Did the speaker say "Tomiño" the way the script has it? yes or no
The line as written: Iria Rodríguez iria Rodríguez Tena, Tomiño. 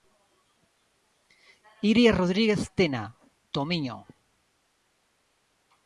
yes